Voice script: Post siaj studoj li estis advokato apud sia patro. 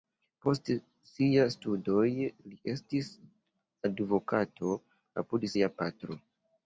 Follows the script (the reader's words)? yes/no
yes